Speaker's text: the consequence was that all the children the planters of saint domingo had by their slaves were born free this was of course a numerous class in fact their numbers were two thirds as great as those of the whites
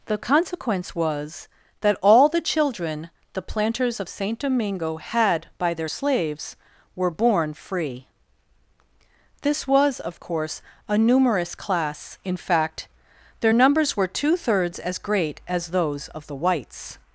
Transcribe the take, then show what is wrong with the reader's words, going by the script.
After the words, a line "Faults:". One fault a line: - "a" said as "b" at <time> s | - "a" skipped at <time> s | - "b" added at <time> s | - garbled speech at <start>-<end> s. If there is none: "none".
the consequence was that all the children the planters of saint domingo had by their slaves were born free this was of course a numerous class in fact their numbers were two thirds as great as those of the whites
Faults:
none